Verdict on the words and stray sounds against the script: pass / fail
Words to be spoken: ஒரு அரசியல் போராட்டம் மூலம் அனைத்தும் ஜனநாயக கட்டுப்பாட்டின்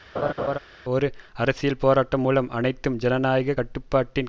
fail